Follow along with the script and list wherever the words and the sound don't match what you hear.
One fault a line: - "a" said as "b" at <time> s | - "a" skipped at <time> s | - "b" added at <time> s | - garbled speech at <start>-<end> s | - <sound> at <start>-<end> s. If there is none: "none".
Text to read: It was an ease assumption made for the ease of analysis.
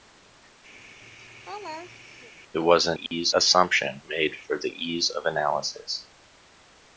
- laugh at 0.8-2.3 s
- dropout at 3.1-3.1 s